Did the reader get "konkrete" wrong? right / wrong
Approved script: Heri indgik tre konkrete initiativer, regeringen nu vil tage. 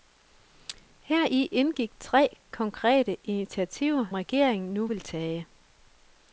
right